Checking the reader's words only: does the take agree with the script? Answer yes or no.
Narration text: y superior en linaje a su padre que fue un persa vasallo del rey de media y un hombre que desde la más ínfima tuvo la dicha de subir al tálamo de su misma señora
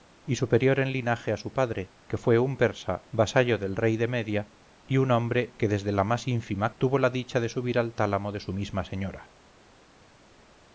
yes